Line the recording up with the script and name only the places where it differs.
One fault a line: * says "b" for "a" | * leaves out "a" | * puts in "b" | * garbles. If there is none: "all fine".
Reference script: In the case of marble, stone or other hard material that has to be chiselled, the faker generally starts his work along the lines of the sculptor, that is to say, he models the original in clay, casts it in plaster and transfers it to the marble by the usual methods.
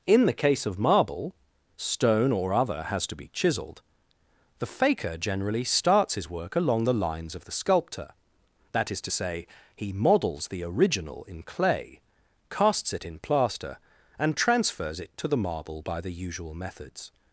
* leaves out "hard material that"